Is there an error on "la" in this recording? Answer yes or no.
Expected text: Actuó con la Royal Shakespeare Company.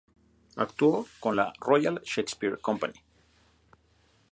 no